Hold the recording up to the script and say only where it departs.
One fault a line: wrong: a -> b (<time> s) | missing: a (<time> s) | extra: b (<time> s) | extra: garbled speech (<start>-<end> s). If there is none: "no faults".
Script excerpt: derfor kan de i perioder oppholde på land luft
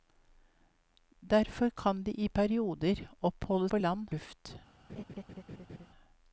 no faults